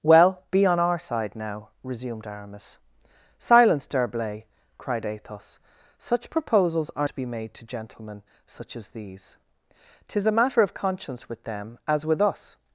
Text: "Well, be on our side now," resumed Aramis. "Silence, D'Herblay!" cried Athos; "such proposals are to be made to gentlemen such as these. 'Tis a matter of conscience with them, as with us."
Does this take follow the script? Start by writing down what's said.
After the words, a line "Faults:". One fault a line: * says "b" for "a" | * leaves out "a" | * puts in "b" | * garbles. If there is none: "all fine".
"Well, be on our side now," resumed Aramis. "Silence, D'Herblay!" cried Athos; "such proposals are to be made to gentlemen such as these. 'Tis a matter of conscience with them, as with us."
Faults:
all fine